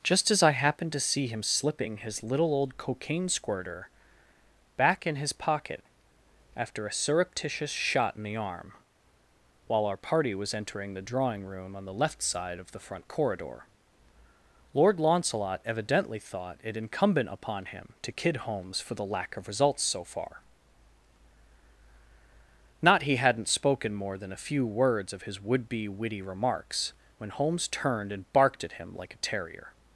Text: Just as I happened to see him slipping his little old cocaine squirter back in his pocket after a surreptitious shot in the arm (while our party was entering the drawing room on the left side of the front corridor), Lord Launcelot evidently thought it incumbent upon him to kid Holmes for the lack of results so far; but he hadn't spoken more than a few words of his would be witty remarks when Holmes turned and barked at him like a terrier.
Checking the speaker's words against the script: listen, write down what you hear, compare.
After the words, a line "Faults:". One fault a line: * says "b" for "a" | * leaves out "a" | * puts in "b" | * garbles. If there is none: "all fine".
Just as I happened to see him slipping his little old cocaine squirter back in his pocket after a surreptitious shot in the arm (while our party was entering the drawing room on the left side of the front corridor), Lord Launcelot evidently thought it incumbent upon him to kid Holmes for the lack of results so far; not he hadn't spoken more than a few words of his would be witty remarks when Holmes turned and barked at him like a terrier.
Faults:
* says "not" for "but"